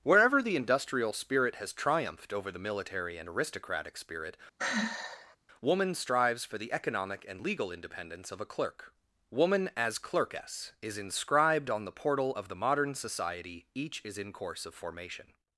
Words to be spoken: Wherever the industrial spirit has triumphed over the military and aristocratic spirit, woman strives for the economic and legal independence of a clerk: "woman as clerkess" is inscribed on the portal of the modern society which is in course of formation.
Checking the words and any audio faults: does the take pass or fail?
fail